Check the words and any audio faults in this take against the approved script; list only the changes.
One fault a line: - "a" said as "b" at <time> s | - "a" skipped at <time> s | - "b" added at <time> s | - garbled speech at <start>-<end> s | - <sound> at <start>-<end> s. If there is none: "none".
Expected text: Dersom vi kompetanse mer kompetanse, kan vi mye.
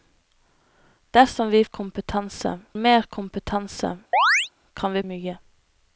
- chirp at 4.1-4.5 s